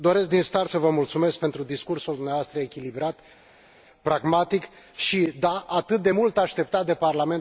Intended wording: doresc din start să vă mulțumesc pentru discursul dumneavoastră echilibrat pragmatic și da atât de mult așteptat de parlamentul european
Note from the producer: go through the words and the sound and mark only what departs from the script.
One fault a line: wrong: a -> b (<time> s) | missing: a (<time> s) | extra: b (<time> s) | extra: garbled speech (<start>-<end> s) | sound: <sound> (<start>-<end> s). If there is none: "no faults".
no faults